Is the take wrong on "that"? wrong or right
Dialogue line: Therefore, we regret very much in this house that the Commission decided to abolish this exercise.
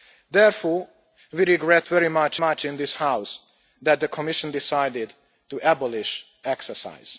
right